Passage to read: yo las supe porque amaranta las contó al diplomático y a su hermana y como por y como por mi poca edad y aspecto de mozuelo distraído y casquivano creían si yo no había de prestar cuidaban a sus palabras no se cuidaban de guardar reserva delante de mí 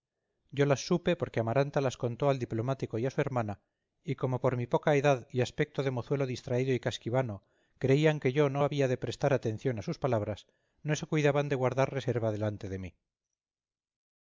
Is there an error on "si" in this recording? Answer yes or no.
yes